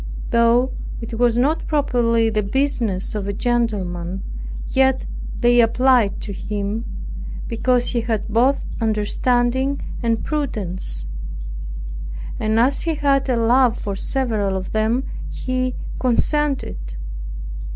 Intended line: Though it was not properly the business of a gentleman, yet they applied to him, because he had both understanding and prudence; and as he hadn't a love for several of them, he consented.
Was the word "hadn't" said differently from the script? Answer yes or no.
yes